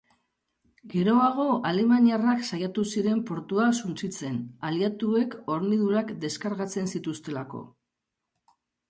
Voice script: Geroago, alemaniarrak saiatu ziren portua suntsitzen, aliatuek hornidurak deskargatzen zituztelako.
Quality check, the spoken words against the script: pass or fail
pass